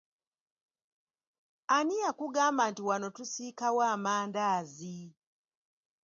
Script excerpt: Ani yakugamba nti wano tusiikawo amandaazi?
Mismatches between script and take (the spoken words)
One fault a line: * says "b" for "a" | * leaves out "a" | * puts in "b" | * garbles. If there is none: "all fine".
all fine